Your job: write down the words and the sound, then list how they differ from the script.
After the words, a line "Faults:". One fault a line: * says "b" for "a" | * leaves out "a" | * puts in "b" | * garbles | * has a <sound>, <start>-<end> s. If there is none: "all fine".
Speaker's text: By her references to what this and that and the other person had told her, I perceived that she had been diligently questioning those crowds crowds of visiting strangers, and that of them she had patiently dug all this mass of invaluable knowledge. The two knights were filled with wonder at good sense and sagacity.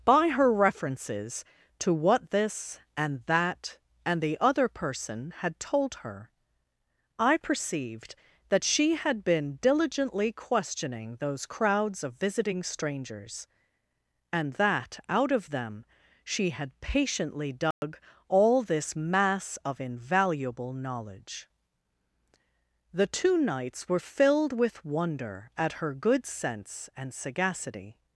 By her references to what this and that and the other person had told her, I perceived that she had been diligently questioning those crowds of visiting strangers, and that out of them she had patiently dug all this mass of invaluable knowledge. The two knights were filled with wonder at her good sense and sagacity.
Faults:
* leaves out "crowds"
* puts in "out"
* has a dropout, 17.7-17.8 s
* puts in "her"